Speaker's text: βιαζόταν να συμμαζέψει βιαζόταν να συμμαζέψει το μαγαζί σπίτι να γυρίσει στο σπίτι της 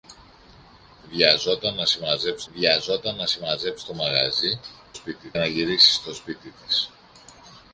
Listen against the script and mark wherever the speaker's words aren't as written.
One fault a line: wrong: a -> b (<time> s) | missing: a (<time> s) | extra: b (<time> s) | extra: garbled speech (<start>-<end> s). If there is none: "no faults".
no faults